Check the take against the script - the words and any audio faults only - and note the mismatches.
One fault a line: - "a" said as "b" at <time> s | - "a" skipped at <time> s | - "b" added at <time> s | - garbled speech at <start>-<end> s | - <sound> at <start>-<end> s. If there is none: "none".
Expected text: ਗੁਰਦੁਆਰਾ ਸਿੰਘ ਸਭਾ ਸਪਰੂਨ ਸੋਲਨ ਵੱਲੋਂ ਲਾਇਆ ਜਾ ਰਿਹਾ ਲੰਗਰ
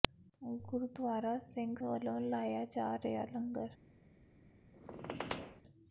- "ਸਭਾ ਸਪਰੂਨ ਸੋਲਨ" skipped at 1.8 s
- squeak at 4.7-5.6 s